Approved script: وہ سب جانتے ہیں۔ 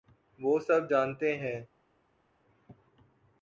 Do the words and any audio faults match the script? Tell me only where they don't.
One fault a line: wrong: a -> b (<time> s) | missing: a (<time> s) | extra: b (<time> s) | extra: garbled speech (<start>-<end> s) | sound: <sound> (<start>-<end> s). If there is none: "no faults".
no faults